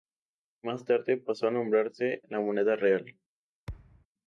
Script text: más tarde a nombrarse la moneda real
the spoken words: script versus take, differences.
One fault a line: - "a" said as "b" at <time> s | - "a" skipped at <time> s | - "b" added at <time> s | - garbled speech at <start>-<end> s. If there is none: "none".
- "pasó" added at 1.2 s